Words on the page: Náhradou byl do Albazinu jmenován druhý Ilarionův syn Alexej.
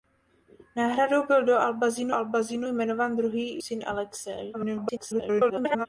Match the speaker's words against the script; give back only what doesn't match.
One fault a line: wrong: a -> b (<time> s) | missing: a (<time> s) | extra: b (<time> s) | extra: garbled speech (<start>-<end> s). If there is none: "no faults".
extra: Albazinu (2.1 s)
missing: Ilarionův (3.6 s)
extra: garbled speech (4.5-5.9 s)